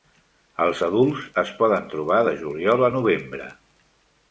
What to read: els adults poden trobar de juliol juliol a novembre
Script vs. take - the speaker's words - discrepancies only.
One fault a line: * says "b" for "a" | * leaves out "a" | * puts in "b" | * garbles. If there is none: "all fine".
* puts in "es"
* leaves out "juliol"